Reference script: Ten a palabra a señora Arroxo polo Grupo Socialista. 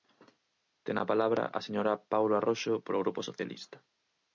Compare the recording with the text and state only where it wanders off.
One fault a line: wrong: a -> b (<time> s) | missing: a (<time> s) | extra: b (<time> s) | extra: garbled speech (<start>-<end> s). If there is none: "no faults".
extra: Paulo (2.1 s)